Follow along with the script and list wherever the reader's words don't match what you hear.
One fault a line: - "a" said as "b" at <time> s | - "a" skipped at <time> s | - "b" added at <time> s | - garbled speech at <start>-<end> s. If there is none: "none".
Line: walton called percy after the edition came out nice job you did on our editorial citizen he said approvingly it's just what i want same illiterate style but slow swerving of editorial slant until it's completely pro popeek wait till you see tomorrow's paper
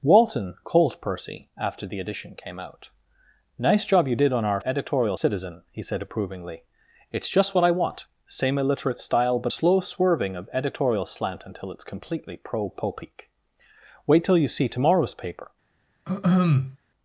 none